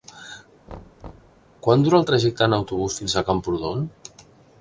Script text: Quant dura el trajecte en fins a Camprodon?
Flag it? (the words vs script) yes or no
yes